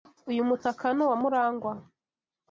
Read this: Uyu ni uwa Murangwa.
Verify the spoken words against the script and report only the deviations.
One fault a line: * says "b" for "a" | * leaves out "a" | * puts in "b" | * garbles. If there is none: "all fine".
* puts in "mutaka"